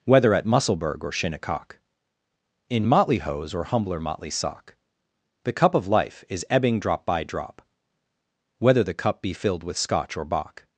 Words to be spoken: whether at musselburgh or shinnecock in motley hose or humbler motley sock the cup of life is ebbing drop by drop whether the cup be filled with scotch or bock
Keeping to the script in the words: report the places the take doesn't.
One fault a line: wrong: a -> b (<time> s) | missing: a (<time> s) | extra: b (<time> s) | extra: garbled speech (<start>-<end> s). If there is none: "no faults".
no faults